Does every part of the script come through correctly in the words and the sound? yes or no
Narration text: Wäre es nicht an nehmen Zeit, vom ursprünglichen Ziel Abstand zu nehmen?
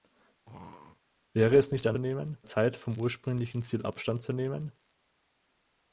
no